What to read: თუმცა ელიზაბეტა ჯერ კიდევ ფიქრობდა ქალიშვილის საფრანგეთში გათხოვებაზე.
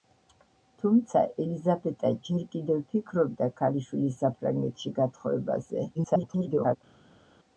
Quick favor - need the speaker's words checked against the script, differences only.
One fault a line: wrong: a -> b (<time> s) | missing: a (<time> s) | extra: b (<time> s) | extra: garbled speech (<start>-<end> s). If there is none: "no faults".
extra: garbled speech (5.9-6.8 s)